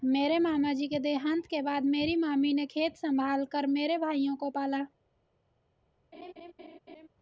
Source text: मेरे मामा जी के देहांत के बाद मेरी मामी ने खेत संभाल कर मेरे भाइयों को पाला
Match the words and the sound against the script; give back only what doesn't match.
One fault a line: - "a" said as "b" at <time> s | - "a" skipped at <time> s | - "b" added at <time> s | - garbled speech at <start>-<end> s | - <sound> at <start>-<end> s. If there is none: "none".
- laugh at 6.1-7.1 s